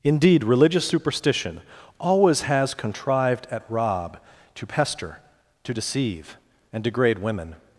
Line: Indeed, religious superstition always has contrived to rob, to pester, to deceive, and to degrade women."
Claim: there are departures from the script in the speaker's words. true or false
true